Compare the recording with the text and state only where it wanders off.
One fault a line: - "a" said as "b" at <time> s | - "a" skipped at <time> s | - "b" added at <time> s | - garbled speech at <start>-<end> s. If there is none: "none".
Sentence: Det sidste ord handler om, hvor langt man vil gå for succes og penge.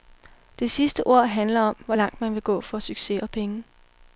none